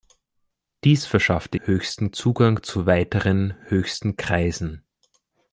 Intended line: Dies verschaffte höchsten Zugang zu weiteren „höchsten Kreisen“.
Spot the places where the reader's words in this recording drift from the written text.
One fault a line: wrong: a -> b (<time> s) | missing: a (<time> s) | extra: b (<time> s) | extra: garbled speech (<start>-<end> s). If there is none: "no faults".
no faults